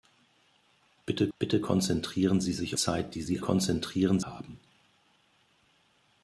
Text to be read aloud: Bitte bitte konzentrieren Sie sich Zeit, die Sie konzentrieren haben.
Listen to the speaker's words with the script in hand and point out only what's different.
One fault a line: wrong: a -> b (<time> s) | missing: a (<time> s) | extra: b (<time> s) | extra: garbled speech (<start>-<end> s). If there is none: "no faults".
no faults